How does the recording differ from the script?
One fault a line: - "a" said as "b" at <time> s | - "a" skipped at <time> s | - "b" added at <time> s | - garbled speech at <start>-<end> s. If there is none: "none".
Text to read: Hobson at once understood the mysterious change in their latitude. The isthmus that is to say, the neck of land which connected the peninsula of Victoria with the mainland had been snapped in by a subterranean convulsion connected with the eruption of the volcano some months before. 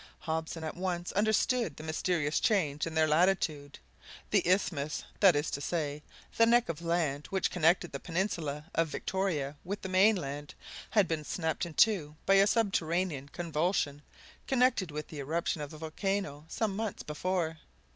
- "two" added at 11.7 s